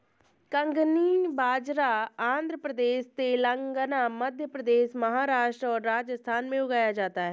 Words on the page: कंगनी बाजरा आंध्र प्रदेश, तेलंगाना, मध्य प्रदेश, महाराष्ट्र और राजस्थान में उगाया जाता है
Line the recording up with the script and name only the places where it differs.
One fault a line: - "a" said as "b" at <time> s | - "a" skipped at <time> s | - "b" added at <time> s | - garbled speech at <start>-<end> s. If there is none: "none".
none